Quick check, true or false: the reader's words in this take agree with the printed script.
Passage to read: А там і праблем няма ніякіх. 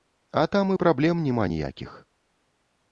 true